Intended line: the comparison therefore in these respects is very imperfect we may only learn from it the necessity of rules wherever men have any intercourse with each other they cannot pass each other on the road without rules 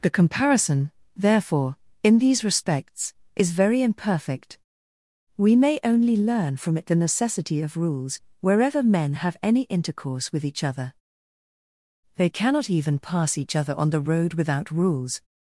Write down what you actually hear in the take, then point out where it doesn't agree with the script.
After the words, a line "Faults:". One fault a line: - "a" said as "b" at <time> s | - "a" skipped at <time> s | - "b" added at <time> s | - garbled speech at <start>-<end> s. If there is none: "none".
the comparison therefore in these respects is very imperfect we may only learn from it the necessity of rules wherever men have any intercourse with each other they cannot even pass each other on the road without rules
Faults:
- "even" added at 12.7 s